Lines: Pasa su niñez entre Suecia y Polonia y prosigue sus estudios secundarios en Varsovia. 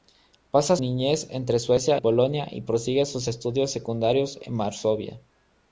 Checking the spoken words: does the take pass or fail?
fail